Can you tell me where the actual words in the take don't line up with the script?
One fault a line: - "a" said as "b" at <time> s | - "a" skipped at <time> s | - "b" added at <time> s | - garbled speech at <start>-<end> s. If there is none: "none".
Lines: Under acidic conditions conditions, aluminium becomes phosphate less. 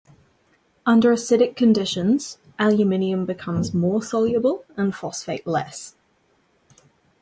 - "conditions" skipped at 2.4 s
- "more soluble and" added at 3.7 s